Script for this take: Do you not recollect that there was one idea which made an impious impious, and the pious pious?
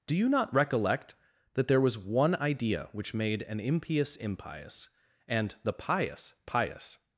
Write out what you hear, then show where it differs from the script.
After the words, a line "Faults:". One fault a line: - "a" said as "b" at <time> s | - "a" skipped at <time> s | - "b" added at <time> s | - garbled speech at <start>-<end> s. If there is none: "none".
Do you not recollect that there was one idea which made an impious impious, and the pious pious?
Faults:
none